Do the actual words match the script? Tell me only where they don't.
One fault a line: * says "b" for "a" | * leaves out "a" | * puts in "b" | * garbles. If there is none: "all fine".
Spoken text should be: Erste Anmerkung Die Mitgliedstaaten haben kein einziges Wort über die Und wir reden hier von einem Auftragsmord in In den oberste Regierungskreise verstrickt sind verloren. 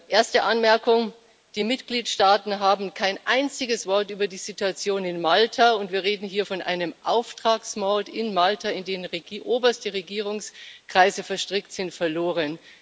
* puts in "Situation in Malta"
* puts in "Malta"